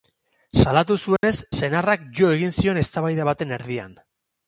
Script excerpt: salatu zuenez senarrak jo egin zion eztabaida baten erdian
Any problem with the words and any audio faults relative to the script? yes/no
yes